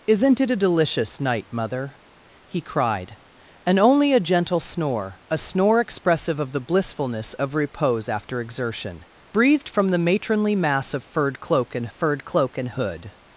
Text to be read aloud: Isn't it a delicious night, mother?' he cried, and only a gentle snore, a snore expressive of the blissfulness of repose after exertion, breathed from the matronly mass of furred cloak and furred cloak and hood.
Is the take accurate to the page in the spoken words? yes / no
yes